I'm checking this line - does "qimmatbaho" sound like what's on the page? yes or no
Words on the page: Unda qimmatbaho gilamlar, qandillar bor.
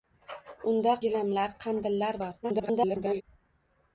no